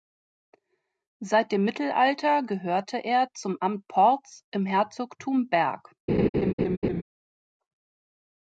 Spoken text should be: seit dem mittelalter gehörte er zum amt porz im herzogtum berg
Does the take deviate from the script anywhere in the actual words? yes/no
no